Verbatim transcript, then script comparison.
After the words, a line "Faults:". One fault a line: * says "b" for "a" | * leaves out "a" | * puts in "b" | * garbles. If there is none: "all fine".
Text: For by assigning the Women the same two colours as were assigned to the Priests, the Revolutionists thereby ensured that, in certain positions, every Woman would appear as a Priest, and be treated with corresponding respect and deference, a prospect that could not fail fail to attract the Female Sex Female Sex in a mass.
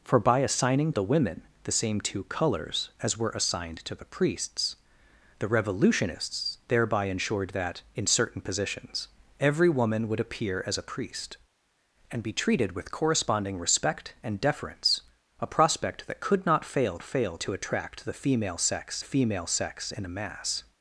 For by assigning the Women the same two colours as were assigned to the Priests, the Revolutionists thereby ensured that, in certain positions, every Woman would appear as a Priest, and be treated with corresponding respect and deference, a prospect that could not fail fail to attract the Female Sex Female Sex in a mass.
Faults:
all fine